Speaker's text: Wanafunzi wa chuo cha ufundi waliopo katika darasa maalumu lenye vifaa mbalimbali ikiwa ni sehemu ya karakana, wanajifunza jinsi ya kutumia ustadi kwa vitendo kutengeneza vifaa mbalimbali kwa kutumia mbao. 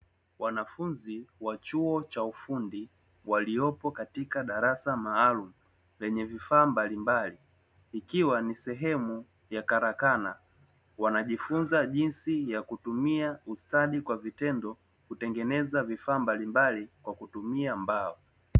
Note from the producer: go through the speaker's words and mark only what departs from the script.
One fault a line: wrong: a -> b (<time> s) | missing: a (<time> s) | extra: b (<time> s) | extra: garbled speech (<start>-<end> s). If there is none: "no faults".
no faults